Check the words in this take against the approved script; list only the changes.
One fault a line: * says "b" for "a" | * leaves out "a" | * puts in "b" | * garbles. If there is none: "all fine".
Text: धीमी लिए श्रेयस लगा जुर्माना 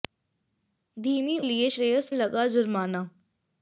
all fine